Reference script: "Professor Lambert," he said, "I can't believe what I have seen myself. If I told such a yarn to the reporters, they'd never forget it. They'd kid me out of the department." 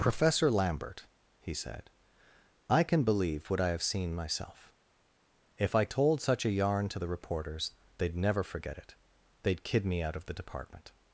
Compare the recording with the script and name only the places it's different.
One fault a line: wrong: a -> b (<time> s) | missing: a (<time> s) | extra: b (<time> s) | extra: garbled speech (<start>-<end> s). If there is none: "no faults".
wrong: can't -> can (2.8 s)